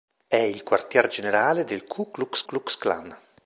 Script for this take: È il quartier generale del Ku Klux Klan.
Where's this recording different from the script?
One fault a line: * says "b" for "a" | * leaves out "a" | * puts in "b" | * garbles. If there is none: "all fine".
* puts in "Klux"